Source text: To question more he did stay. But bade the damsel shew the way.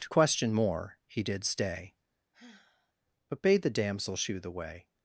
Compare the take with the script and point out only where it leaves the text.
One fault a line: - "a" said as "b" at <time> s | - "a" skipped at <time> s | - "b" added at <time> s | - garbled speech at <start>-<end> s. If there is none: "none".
none